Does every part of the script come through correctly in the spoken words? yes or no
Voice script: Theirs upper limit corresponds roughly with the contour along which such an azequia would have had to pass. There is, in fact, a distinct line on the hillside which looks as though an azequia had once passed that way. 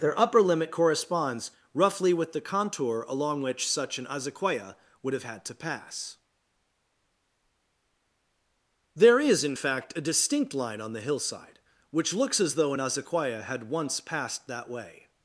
no